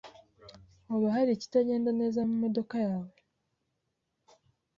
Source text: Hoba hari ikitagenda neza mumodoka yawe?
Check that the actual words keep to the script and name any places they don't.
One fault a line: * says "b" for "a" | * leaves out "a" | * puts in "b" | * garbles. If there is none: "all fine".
all fine